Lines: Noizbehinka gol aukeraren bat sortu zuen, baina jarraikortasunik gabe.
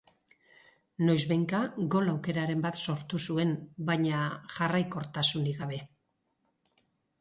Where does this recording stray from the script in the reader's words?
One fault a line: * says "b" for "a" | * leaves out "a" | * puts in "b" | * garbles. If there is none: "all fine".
all fine